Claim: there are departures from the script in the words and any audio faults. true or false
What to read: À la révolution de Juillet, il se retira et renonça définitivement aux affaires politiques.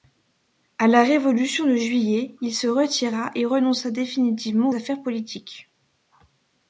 true